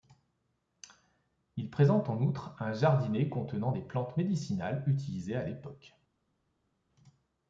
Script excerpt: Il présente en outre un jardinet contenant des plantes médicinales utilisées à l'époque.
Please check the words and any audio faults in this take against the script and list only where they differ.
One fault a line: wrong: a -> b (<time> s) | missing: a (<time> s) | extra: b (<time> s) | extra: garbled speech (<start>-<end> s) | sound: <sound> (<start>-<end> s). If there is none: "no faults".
no faults